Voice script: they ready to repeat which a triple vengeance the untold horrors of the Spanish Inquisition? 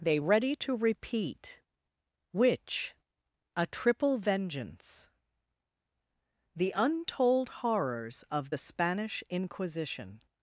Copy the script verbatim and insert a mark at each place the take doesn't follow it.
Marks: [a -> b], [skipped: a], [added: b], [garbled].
they ready to repeat which a triple vengeance the untold horrors of the Spanish Inquisition?